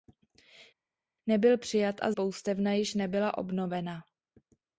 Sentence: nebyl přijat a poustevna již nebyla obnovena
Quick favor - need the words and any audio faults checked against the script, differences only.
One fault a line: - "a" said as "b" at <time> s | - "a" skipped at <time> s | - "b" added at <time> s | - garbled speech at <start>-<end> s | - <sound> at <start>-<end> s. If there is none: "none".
none